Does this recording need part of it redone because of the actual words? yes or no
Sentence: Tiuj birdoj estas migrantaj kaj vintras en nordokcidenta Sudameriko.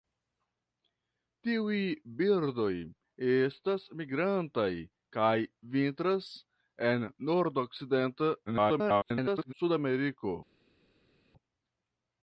yes